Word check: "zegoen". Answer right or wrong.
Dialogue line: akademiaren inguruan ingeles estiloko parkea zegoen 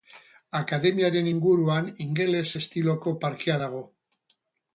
wrong